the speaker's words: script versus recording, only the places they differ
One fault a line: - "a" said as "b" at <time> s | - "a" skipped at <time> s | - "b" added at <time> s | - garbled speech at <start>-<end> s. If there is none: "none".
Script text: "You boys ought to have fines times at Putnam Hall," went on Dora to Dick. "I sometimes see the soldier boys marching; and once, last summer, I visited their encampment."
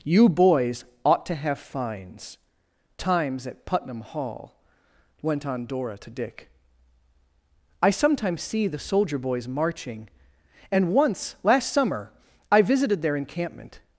none